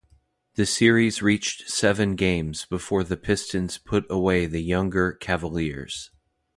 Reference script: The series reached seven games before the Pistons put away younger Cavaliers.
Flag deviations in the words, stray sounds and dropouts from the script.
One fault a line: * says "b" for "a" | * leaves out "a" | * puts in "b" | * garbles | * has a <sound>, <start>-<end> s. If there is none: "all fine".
* puts in "the"